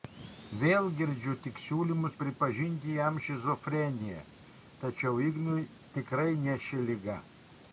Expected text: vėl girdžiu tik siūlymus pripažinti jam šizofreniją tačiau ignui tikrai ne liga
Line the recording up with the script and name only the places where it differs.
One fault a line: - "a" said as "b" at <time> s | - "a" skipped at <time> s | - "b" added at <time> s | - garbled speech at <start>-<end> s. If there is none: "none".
- "ši" added at 6.7 s